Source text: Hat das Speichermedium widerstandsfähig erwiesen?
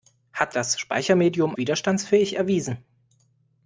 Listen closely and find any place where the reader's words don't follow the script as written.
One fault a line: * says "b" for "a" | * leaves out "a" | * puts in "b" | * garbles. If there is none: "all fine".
all fine